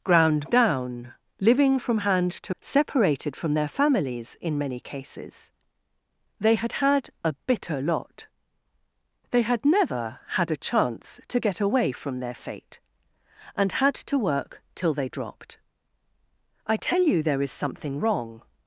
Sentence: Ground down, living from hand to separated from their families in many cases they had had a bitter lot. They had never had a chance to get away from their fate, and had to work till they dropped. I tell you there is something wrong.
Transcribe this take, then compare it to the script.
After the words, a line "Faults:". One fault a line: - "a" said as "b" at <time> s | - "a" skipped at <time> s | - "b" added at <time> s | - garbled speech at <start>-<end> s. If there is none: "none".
Ground down, living from hand to separated from their families in many cases they had had a bitter lot. They had never had a chance to get away from their fate, and had to work till they dropped. I tell you there is something wrong.
Faults:
none